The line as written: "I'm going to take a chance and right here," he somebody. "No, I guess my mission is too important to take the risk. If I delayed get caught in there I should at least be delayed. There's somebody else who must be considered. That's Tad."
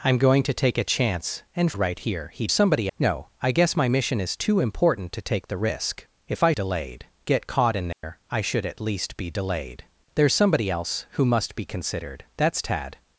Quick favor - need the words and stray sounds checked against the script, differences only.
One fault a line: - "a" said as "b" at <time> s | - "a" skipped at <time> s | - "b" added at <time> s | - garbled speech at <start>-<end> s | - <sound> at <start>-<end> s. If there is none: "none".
- dropout at 7.9-8.0 s